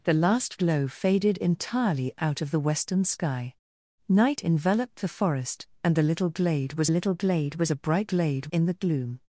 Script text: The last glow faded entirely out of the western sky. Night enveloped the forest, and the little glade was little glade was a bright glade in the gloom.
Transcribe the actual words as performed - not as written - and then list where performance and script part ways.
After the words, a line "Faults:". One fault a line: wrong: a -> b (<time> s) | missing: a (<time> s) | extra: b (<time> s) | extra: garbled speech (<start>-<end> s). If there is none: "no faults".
The last glow faded entirely out of the western sky. Night enveloped the forest, and the little glade was little glade was a bright glade in the gloom.
Faults:
no faults